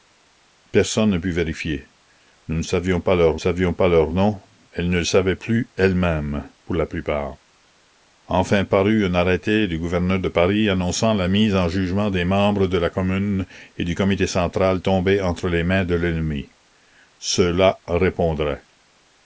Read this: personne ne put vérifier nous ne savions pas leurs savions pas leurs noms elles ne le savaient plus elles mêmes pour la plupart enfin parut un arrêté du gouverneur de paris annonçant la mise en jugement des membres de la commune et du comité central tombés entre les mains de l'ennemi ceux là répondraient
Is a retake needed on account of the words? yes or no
no